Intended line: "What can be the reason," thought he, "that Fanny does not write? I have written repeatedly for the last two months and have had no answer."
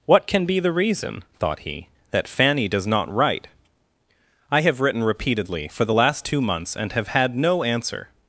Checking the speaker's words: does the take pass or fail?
pass